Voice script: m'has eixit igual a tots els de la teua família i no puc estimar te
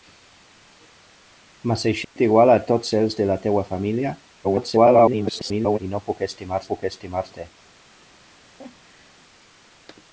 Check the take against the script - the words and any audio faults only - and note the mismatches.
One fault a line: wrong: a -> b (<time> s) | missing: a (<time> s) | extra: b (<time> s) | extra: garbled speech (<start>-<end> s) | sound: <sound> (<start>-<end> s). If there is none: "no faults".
sound: dropout (2.0-2.2 s)
extra: garbled speech (4.4-5.8 s)
extra: puc estimar (6.7 s)
sound: laugh (8.2-9.2 s)